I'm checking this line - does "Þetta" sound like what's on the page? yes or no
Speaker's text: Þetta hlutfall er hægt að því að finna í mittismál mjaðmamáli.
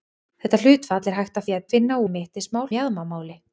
yes